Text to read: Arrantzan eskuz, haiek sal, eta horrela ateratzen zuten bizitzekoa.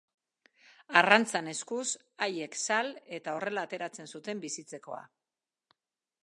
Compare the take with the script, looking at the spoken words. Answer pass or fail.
pass